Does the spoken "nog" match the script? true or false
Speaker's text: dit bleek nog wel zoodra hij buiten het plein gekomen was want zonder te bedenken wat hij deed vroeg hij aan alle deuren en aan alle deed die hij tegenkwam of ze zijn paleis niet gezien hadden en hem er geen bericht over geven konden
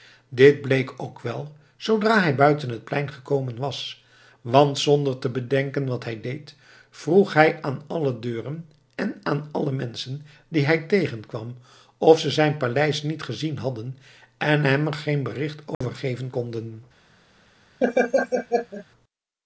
false